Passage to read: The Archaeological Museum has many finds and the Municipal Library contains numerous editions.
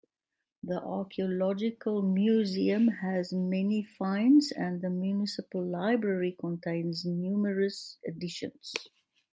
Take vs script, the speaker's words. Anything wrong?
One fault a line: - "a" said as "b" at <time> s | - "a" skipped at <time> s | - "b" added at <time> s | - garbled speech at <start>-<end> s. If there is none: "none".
none